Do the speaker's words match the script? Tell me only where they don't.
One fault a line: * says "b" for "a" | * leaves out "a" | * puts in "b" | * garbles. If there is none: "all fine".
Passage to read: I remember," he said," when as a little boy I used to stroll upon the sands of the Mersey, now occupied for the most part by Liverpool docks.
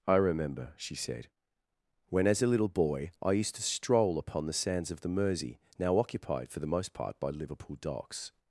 * says "she" for "he"